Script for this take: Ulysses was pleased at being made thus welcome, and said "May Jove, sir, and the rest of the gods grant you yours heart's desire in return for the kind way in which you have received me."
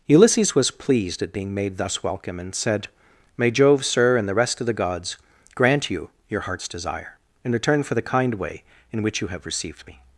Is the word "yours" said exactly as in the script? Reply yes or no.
no